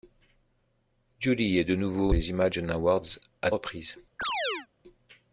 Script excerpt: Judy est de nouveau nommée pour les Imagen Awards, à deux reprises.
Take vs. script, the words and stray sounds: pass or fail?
fail